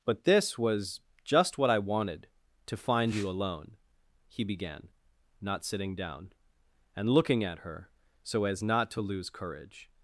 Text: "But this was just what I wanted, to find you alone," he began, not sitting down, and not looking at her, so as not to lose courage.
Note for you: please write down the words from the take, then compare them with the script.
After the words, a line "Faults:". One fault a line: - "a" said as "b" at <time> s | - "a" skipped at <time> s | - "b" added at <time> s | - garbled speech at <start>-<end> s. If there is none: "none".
"But this was just what I wanted, to find you alone," he began, not sitting down, and looking at her, so as not to lose courage.
Faults:
- "not" skipped at 7.1 s